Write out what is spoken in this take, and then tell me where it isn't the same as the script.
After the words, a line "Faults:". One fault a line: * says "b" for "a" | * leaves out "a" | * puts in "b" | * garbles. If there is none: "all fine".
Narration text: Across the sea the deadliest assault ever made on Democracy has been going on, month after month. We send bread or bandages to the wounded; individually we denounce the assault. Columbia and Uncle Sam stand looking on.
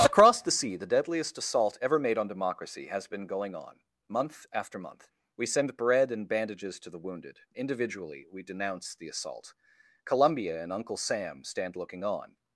Across the sea the deadliest assault ever made on Democracy has been going on, month after month. We send bread and bandages to the wounded; individually we denounce the assault. Columbia and Uncle Sam stand looking on.
Faults:
* says "and" for "or"